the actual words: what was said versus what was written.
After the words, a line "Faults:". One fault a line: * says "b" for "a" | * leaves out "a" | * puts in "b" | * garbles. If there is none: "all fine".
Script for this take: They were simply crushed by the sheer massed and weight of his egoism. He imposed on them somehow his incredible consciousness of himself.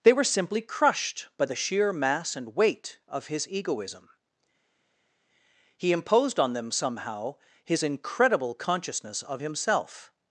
They were simply crushed by the sheer mass and weight of his egoism. He imposed on them somehow his incredible consciousness of himself.
Faults:
* says "mass" for "massed"